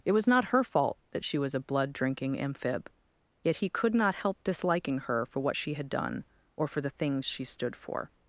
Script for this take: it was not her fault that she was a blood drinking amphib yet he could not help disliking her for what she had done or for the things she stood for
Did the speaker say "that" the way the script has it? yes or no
yes